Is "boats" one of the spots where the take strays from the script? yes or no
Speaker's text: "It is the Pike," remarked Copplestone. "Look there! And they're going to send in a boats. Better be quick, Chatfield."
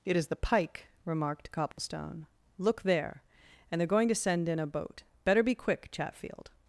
yes